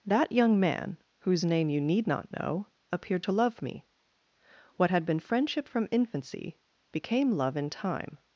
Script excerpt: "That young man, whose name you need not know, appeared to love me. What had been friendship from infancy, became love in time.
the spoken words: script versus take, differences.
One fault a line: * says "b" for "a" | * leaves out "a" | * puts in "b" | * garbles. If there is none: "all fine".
all fine